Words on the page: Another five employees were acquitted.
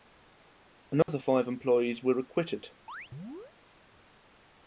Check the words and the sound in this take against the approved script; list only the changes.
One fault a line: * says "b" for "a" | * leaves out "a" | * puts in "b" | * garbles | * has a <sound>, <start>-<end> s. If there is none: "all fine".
* has a dropout, 1.0-1.1 s
* has a chirp, 2.9-3.5 s